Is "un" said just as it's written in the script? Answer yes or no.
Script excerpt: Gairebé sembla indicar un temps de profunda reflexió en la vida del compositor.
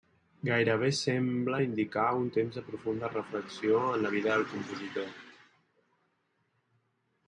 yes